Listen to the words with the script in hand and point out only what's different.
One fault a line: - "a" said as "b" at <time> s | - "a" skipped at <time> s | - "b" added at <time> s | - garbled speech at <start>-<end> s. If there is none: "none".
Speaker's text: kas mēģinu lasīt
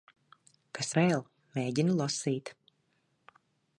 - "vēl" added at 1.0 s